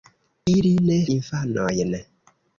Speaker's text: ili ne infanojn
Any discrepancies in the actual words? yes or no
no